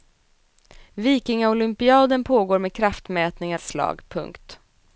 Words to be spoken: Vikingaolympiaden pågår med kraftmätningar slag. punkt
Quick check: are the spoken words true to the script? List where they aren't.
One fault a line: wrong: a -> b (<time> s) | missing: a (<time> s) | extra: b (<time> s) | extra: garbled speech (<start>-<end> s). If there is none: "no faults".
no faults